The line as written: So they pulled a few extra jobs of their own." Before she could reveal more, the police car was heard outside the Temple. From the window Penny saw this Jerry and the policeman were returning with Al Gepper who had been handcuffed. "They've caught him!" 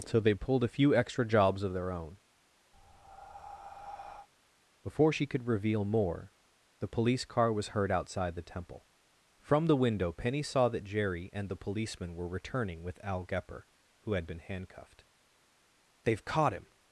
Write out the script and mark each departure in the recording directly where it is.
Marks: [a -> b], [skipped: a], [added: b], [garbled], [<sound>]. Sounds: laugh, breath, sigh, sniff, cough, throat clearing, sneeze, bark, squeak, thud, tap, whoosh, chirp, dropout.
So they pulled a few extra jobs of their own." [breath] Before she could reveal more, the police car was heard outside the Temple. From the window Penny saw [this -> that] Jerry and the policeman were returning with Al Gepper who had been handcuffed. "They've caught him!"